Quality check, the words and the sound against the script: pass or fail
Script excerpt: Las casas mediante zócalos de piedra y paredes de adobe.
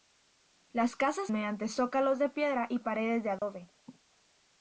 fail